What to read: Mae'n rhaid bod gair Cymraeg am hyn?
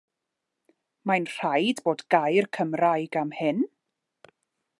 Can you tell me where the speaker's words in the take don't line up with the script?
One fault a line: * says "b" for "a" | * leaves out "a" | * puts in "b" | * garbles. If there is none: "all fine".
all fine